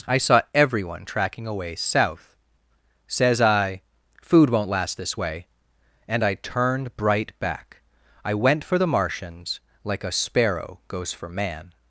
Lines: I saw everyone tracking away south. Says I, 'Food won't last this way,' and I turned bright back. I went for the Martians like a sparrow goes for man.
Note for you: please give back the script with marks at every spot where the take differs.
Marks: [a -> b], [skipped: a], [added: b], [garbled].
I saw everyone tracking away south. Says I, 'Food won't last this way,' and I turned bright back. I went for the Martians like a sparrow goes for man.